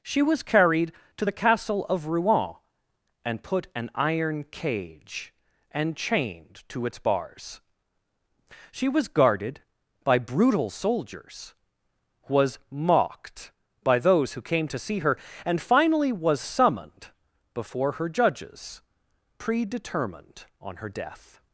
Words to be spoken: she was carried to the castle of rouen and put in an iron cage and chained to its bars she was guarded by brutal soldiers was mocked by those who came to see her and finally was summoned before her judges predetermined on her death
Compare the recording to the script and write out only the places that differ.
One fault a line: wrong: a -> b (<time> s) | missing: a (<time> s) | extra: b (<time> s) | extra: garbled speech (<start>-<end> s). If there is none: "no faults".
missing: in (3.7 s)